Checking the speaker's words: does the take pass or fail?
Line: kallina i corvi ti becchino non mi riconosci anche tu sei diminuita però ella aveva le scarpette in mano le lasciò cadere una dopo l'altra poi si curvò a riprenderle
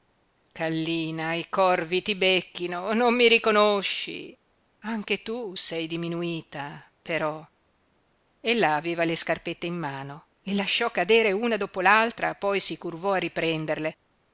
pass